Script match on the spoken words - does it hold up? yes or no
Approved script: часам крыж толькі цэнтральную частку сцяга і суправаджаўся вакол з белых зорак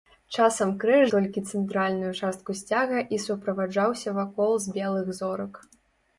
yes